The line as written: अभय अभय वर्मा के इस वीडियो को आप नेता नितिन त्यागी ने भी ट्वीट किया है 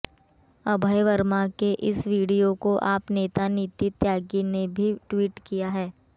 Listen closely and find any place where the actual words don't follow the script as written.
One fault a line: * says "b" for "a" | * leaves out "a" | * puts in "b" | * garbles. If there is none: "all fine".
* leaves out "अभय"